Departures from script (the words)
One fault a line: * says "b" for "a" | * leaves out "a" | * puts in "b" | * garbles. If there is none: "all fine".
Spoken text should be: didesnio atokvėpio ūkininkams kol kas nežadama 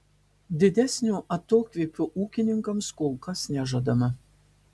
all fine